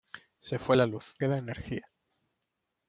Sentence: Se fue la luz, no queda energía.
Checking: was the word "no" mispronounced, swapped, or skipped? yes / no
yes